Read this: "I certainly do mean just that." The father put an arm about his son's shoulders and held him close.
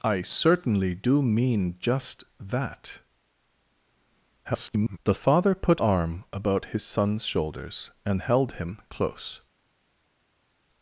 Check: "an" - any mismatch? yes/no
yes